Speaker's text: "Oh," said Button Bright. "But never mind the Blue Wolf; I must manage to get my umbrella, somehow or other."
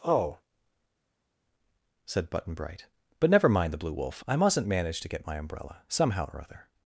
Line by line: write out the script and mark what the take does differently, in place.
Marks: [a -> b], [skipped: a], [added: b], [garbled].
"Oh," said Button Bright. "But never mind the Blue Wolf; I [must -> mustn't] manage to get my umbrella, somehow or other."